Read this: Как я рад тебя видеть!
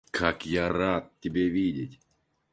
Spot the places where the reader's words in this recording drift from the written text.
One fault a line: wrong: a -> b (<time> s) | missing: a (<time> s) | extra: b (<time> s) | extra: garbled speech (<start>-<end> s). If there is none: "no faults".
no faults